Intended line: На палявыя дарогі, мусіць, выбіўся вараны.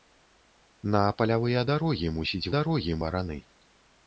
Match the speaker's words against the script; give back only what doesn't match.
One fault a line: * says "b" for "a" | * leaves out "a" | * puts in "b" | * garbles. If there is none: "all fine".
* says "дарогі" for "выбіўся"